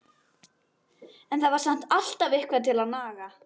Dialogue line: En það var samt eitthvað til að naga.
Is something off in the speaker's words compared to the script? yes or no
yes